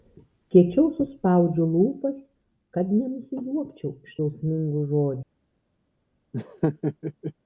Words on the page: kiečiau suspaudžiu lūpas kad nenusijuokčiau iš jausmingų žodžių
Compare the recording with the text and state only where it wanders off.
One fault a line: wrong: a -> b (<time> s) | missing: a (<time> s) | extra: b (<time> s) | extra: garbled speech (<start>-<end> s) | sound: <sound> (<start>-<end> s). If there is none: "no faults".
sound: laugh (6.3-7.3 s)